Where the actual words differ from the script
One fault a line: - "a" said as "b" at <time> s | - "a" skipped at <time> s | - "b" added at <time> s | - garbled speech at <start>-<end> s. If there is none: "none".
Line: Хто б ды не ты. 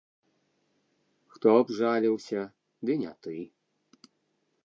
- "жаліўся" added at 1.8 s